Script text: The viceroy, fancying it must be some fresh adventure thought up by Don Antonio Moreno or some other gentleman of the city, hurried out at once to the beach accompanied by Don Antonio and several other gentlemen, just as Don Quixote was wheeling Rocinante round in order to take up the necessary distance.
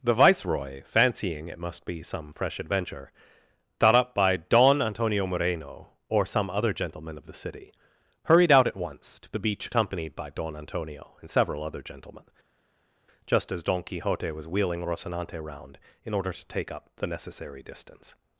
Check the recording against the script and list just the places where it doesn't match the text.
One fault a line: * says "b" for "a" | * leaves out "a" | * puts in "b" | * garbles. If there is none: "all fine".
all fine